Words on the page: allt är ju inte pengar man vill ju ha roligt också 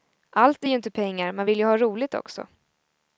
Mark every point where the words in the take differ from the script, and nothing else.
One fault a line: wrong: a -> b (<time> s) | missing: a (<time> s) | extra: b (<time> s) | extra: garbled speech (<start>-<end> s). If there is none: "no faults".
no faults